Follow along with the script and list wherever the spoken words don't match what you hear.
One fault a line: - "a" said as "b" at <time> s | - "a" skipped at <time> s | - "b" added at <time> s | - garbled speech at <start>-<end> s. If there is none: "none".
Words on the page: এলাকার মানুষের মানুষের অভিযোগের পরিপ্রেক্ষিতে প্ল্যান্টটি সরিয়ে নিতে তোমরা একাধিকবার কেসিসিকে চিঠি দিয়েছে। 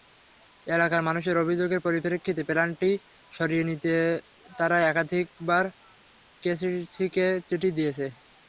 - "মানুষের" skipped at 1.4 s
- "তোমরা" said as "তারা" at 4.6 s